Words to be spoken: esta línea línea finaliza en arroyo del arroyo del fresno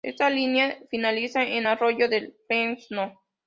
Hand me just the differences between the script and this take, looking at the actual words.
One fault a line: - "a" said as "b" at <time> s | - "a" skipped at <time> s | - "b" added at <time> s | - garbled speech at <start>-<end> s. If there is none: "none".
- "línea" skipped at 0.8 s
- "arroyo del" skipped at 2.3 s